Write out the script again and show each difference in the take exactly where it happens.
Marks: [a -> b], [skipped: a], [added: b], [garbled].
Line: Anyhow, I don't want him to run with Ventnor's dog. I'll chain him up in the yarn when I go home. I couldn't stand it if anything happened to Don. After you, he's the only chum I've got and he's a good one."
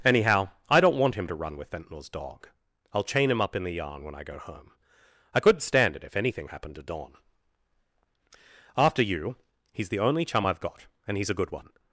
Anyhow, I don't want him to run with Ventnor's dog. I'll chain him up in the yarn when I go home. I couldn't stand it if anything happened to Don. After you, he's the only chum I've got and he's a good one."